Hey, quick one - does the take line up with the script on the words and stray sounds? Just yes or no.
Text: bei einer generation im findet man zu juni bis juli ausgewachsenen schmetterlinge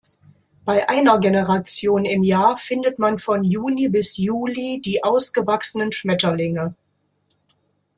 no